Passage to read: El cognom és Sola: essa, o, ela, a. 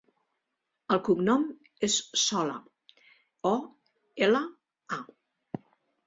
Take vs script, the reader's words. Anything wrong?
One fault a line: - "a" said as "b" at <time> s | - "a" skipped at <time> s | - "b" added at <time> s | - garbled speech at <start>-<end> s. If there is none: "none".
- "essa" skipped at 2.5 s